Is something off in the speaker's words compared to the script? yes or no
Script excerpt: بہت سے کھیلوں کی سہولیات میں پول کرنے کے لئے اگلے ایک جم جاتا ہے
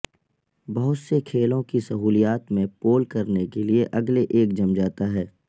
no